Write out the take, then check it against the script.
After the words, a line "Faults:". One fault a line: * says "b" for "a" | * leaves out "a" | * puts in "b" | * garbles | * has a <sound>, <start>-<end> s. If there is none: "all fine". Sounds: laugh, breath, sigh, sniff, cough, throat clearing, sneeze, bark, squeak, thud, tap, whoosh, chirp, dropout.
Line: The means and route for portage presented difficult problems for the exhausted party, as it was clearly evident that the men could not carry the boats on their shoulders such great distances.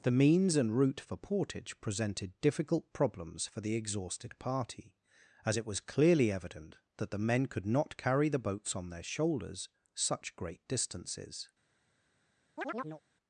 The means and route for portage presented difficult problems for the exhausted party, as it was clearly evident that the men could not carry the boats on their shoulders such great distances.
Faults:
* has a chirp, 12.6-13.0 s